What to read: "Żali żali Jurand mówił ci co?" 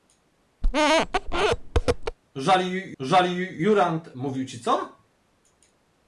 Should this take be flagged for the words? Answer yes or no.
no